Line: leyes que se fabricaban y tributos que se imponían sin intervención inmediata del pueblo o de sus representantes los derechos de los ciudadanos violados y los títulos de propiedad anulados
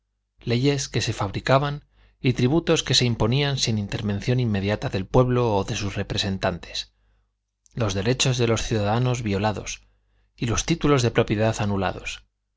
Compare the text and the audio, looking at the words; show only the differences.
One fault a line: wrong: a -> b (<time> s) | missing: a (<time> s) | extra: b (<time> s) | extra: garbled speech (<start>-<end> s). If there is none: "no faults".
no faults